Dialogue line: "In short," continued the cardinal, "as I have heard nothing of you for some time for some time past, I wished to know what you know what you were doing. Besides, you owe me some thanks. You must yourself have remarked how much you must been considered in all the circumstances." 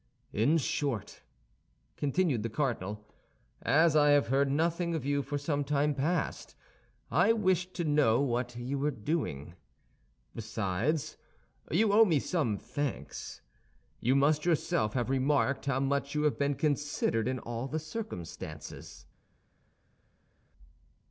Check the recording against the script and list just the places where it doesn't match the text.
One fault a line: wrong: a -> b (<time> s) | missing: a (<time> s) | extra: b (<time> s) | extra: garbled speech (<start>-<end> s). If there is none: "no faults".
missing: for some time (5.9 s)
missing: know what you (8.8 s)
wrong: must -> have (16.2 s)